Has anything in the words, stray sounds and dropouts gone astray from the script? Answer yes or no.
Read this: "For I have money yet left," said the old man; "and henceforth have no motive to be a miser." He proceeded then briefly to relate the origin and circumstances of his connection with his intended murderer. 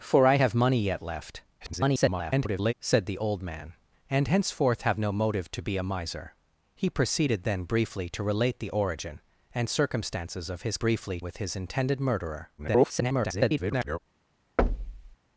yes